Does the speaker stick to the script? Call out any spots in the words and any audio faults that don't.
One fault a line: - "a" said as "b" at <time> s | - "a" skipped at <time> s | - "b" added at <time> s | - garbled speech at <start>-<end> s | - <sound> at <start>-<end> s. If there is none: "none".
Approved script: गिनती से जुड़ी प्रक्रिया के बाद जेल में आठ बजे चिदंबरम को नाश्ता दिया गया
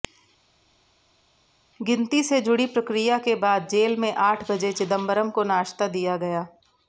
none